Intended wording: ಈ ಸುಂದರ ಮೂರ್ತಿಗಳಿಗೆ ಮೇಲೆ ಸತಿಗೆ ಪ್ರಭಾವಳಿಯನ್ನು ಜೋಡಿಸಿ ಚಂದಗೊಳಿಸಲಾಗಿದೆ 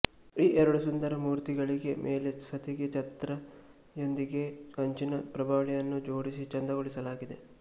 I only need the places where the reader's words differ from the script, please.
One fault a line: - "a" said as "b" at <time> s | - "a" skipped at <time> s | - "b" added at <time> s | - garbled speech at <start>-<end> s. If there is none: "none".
- "ಎರಡು" added at 0.6 s
- "ಛತ್ರ ಯೊಂದಿಗೆ ಕಂಚಿನ" added at 2.9 s